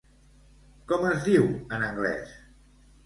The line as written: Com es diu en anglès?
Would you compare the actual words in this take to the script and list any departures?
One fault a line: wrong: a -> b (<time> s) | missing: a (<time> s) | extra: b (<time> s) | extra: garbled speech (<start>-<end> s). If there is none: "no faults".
no faults